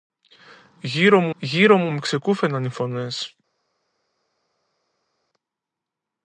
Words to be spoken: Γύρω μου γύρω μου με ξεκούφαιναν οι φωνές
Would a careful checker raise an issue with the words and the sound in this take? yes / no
no